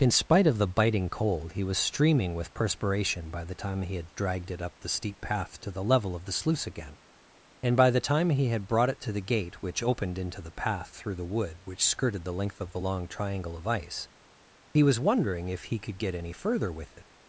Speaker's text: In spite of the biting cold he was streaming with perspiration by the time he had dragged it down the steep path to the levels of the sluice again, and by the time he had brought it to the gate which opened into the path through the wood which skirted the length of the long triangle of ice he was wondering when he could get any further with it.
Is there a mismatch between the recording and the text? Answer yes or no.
yes